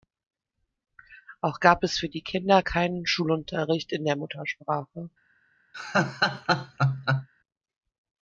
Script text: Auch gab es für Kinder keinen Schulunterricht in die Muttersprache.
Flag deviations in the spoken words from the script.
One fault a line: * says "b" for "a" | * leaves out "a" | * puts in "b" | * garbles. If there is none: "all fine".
* puts in "die"
* says "der" for "die"